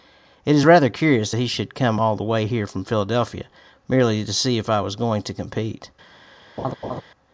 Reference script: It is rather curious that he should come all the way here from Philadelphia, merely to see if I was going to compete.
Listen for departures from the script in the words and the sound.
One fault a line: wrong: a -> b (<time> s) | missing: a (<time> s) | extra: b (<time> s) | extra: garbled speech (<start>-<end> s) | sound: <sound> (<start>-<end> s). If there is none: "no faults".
sound: laugh (6.6-7.0 s)